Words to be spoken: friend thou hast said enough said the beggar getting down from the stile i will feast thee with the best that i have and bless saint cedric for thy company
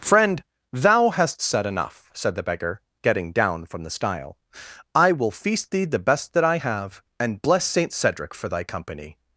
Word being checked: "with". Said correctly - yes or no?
no